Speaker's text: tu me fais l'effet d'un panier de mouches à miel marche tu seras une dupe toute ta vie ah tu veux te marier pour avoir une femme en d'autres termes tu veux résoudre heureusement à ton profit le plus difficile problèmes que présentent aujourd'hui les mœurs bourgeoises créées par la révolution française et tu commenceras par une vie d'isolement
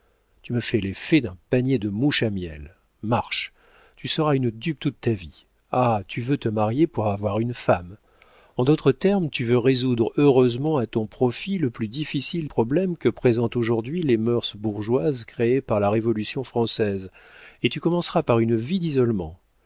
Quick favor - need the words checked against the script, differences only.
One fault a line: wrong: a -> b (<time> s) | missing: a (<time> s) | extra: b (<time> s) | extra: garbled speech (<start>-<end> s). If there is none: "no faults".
no faults